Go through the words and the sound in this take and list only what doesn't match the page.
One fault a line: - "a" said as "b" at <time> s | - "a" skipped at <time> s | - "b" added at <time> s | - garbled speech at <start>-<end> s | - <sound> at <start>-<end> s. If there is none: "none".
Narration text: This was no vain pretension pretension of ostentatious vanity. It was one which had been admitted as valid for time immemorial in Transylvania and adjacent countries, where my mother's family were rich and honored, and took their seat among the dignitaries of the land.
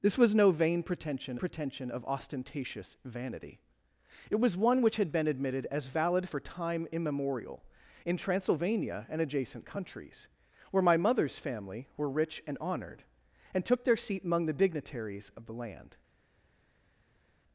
none